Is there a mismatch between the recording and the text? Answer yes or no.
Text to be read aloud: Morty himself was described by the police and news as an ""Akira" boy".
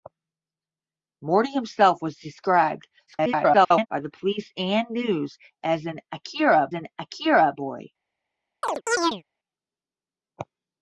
yes